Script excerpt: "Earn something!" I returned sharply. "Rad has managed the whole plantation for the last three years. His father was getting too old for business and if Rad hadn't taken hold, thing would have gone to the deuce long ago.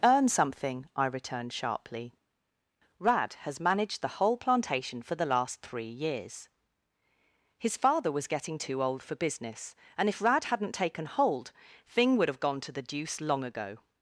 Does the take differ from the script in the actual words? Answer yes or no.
no